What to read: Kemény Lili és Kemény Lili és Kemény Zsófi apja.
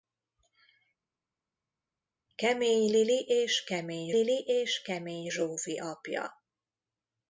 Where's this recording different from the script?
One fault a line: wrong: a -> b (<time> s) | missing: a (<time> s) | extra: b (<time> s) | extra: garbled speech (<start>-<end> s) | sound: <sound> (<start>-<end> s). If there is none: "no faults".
no faults